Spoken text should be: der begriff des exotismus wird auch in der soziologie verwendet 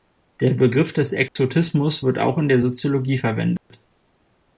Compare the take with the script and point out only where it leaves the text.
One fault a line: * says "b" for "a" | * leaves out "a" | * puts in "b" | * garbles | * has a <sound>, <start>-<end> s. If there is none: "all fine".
* has a dropout, 1.3-1.4 s
* has a dropout, 3.6-3.7 s